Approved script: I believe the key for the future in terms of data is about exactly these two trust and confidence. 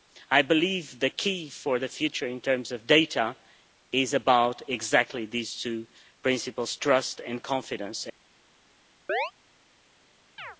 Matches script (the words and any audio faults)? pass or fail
fail